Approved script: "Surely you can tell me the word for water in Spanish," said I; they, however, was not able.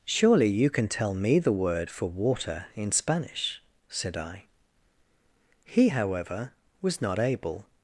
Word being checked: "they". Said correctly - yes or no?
no